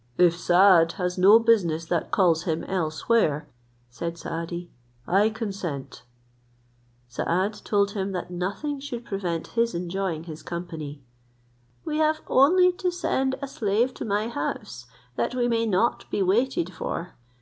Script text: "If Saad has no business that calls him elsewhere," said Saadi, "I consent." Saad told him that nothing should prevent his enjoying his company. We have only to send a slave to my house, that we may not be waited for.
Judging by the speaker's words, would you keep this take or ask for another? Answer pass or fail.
pass